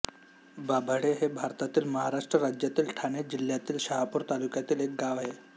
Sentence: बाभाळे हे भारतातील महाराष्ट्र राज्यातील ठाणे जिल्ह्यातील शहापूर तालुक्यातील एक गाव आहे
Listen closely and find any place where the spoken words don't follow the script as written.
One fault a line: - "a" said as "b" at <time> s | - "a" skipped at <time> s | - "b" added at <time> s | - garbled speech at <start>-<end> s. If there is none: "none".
none